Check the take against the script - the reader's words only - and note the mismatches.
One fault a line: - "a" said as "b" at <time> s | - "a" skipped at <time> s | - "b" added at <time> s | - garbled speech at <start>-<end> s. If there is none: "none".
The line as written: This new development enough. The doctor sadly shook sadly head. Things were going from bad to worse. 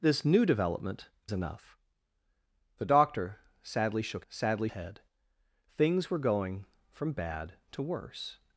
none